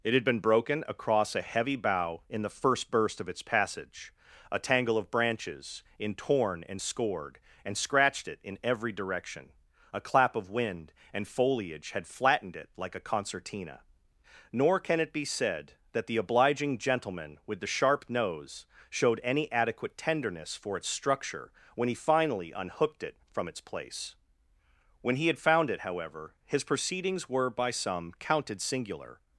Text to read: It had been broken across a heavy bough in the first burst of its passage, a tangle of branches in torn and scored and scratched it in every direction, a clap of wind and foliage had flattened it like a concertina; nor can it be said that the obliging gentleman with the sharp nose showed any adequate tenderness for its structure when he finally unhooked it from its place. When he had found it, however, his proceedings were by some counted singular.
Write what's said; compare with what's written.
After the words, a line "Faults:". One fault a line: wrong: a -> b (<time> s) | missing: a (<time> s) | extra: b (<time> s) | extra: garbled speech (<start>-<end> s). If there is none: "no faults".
It had been broken across a heavy bough in the first burst of its passage, a tangle of branches in torn and scored and scratched it in every direction, a clap of wind and foliage had flattened it like a concertina; nor can it be said that the obliging gentleman with the sharp nose showed any adequate tenderness for its structure when he finally unhooked it from its place. When he had found it, however, his proceedings were by some counted singular.
Faults:
no faults